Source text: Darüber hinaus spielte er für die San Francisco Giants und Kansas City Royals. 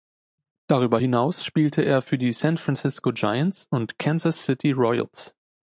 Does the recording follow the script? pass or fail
pass